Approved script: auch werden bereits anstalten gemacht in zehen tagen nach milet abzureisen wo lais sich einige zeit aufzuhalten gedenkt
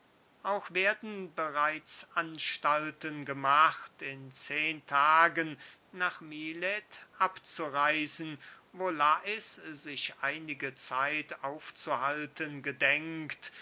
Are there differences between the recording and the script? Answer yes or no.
no